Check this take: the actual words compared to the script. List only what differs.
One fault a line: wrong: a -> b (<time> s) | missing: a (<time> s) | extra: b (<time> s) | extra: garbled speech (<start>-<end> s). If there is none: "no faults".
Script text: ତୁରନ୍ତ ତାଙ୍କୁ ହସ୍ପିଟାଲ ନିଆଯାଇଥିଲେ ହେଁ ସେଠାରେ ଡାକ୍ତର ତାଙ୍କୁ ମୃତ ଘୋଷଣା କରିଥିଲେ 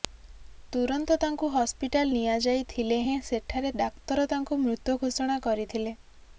no faults